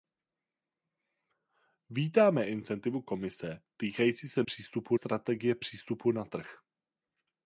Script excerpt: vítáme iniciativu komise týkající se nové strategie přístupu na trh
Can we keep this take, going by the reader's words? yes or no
no